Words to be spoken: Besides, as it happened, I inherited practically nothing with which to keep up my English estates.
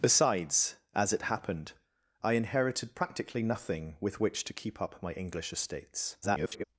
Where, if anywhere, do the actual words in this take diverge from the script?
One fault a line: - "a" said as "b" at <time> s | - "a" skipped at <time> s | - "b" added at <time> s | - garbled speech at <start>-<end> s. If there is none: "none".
- garbled speech at 6.2-6.6 s